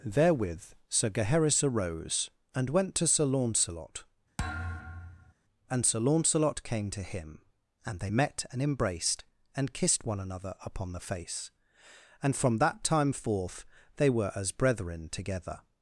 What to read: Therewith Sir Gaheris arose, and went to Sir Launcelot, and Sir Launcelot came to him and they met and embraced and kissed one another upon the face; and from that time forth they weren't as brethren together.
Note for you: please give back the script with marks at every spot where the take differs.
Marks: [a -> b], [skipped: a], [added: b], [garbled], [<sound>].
Therewith Sir Gaheris arose, and went to Sir Launcelot, [thud] and Sir Launcelot came to him and they met and embraced and kissed one another upon the face; and from that time forth they [weren't -> were] as brethren together.